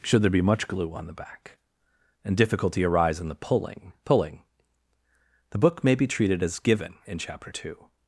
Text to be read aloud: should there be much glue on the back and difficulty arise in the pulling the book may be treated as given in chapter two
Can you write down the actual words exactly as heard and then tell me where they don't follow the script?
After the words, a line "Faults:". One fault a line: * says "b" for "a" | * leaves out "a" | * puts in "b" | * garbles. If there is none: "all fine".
should there be much glue on the back and difficulty arise in the pulling pulling the book may be treated as given in chapter two
Faults:
* puts in "pulling"